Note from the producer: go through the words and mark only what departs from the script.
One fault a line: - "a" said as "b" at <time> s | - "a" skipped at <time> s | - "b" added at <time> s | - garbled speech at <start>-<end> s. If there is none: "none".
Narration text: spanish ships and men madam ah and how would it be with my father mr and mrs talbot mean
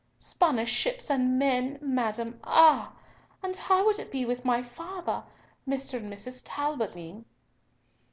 none